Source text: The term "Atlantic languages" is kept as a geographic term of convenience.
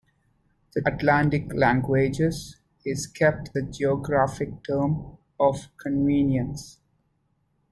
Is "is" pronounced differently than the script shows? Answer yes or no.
no